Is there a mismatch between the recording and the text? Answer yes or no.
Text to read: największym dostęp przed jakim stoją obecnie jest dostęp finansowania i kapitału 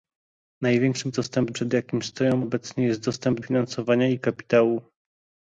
no